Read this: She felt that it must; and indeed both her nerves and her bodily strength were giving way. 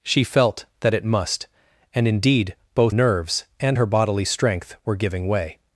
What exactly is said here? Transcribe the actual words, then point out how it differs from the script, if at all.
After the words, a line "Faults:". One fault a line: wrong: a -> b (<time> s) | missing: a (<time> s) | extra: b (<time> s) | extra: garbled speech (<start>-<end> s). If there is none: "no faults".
She felt that it must; and indeed both nerves and her bodily strength were giving way.
Faults:
missing: her (3.0 s)